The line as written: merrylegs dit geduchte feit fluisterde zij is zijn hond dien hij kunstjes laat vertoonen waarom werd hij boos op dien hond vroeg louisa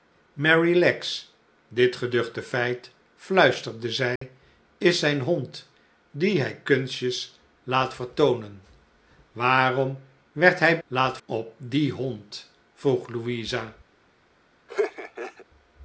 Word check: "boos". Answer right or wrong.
wrong